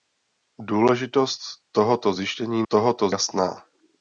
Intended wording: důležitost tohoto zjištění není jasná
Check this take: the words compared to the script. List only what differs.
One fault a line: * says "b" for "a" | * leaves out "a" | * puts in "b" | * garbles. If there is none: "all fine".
* says "tohoto" for "není"